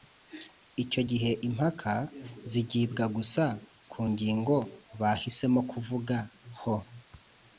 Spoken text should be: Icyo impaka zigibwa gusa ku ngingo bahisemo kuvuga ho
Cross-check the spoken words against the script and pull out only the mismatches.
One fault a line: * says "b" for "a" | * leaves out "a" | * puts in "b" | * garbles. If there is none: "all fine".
* puts in "gihe"